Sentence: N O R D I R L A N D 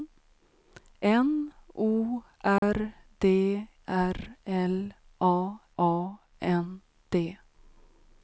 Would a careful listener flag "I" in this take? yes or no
yes